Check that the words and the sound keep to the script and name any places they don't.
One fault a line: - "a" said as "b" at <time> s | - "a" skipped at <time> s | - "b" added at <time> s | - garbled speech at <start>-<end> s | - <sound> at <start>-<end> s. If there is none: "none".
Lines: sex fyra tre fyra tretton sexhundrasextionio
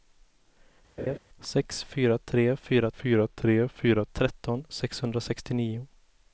- laugh at 1.0-1.2 s
- "fyra tre fyra" added at 2.9 s